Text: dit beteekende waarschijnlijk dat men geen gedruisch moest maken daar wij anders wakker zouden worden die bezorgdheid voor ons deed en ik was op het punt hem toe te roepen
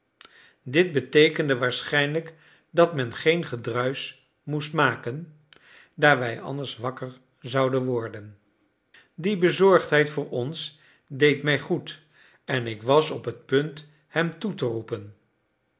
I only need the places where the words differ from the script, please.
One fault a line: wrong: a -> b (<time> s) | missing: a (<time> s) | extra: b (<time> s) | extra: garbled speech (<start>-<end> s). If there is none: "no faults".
extra: mij goed (11.4 s)